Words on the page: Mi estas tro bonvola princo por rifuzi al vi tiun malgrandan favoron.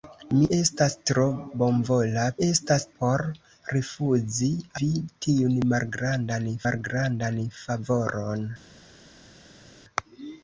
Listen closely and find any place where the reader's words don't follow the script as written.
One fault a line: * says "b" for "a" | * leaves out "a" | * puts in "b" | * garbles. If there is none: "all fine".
* says "estas" for "princo"
* leaves out "al"
* puts in "malgrandan"